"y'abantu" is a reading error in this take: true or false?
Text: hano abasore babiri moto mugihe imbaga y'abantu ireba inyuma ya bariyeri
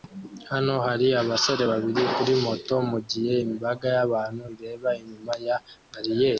false